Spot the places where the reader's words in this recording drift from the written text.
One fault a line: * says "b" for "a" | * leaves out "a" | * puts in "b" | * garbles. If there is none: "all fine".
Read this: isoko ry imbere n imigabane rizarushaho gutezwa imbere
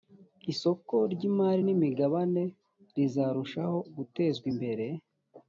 * says "imari" for "imbere"